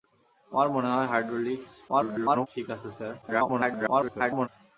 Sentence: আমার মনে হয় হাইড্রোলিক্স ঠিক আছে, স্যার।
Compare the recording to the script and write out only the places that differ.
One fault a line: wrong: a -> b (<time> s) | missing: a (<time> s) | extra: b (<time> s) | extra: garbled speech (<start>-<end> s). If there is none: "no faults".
extra: garbled speech (1.9-2.5 s)
extra: garbled speech (3.2-4.5 s)